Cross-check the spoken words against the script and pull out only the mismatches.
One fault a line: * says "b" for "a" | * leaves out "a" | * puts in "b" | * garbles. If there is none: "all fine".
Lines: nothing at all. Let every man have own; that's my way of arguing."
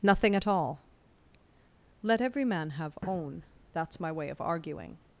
all fine